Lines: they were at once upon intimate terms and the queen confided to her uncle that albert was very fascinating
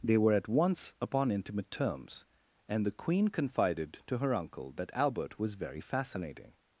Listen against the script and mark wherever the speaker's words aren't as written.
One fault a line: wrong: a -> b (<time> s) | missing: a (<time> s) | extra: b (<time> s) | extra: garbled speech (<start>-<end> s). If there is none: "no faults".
no faults